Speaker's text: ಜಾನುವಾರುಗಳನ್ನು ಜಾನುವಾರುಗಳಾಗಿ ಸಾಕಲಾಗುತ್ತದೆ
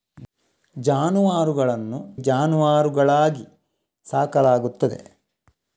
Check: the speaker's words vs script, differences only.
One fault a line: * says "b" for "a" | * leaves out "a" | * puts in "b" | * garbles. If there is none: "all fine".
all fine